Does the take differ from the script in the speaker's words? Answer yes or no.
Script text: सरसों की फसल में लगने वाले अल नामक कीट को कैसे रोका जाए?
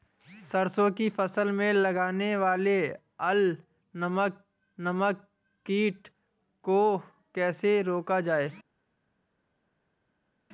yes